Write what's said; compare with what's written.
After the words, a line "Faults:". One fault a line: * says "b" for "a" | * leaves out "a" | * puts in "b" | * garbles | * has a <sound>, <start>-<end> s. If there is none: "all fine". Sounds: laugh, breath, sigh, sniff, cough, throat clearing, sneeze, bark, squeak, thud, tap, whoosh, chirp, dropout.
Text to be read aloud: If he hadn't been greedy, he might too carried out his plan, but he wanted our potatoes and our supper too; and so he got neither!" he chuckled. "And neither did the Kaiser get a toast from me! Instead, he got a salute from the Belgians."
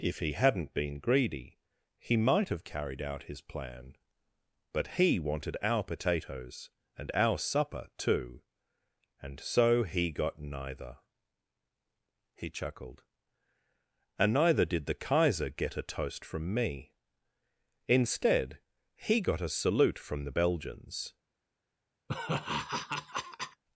If he hadn't been greedy, he might have carried out his plan, but he wanted our potatoes and our supper too; and so he got neither!" he chuckled. "And neither did the Kaiser get a toast from me! Instead, he got a salute from the Belgians."
Faults:
* says "have" for "too"
* has a laugh, 22.1-23.6 s